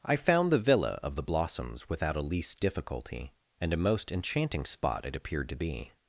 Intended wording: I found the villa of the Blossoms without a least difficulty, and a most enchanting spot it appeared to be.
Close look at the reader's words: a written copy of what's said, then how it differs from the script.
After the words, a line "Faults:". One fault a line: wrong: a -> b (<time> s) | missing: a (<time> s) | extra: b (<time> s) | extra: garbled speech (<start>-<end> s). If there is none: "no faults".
I found the villa of the Blossoms without a least difficulty, and a most enchanting spot it appeared to be.
Faults:
no faults